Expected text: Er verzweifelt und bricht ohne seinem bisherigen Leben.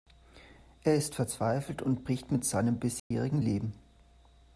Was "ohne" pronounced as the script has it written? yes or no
no